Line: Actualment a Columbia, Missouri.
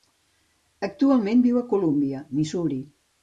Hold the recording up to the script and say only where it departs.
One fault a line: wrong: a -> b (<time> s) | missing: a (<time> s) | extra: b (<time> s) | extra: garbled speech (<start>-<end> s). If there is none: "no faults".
extra: viu (1.4 s)